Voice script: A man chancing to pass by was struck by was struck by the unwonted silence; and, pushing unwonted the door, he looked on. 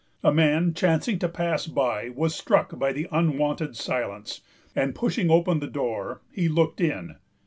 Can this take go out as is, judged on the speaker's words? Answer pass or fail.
fail